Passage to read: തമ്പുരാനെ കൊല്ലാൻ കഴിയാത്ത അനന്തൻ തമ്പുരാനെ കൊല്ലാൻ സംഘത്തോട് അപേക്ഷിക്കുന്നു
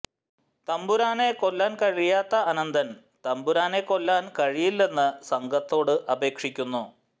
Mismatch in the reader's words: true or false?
true